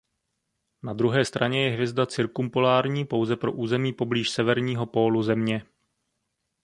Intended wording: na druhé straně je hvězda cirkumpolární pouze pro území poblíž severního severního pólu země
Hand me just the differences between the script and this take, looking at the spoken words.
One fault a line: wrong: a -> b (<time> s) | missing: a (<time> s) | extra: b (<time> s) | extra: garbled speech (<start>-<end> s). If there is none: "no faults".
missing: severního (4.9 s)